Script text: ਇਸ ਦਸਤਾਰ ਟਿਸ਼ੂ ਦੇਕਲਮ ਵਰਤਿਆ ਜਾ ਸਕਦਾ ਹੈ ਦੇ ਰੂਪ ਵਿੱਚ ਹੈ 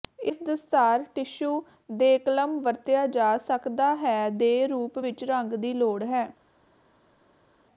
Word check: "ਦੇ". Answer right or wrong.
right